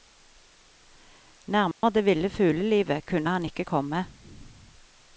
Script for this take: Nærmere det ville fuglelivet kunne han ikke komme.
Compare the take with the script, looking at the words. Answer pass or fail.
pass